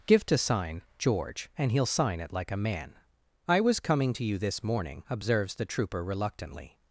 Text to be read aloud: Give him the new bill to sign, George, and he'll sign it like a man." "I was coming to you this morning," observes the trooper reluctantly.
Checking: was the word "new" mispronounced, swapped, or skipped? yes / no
yes